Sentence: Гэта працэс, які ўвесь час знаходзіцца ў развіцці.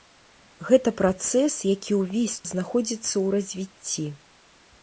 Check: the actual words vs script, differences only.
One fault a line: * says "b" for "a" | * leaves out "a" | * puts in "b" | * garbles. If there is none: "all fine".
* leaves out "час"